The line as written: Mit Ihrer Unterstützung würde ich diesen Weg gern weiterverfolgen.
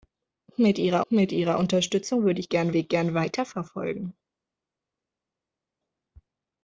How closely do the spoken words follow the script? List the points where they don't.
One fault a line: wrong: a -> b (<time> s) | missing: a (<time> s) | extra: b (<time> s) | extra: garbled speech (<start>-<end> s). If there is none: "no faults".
extra: mit Ihrer (1.1 s)
wrong: diesen -> gern (2.5 s)